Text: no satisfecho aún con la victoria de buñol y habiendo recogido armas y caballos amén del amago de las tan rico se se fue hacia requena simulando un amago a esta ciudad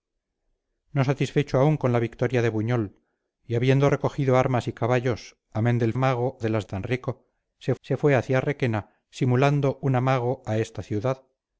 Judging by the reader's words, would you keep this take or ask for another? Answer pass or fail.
pass